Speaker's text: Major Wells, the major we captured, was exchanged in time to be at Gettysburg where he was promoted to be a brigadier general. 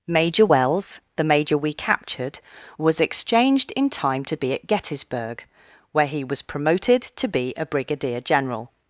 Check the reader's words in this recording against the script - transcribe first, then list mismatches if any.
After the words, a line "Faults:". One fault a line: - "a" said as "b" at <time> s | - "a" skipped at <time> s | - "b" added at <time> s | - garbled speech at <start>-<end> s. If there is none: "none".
Major Wells, the major we captured, was exchanged in time to be at Gettysburg where he was promoted to be a brigadier general.
Faults:
none